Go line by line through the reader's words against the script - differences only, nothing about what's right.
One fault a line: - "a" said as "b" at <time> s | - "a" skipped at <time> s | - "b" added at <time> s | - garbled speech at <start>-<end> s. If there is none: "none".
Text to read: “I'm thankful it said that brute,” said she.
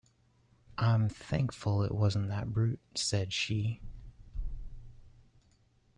- "said" said as "wasn't" at 1.9 s